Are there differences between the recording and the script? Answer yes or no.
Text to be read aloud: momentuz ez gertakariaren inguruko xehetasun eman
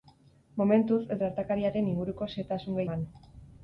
no